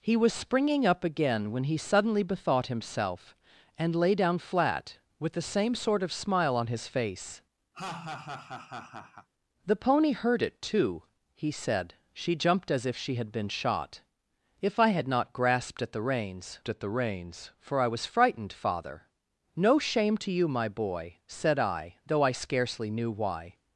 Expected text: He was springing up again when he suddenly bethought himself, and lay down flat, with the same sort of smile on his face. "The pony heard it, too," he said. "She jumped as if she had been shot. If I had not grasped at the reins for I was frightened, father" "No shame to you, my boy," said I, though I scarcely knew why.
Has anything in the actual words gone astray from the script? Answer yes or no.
yes